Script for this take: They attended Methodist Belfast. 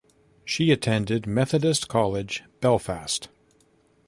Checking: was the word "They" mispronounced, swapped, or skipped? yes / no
yes